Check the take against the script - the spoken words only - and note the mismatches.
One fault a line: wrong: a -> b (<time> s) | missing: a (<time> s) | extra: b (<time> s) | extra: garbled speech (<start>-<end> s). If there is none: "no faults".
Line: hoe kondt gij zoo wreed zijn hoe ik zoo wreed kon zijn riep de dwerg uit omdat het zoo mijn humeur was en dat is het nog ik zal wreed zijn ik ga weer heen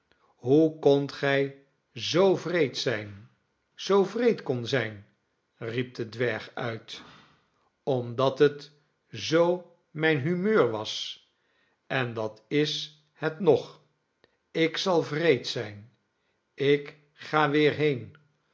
missing: hoe ik (3.3 s)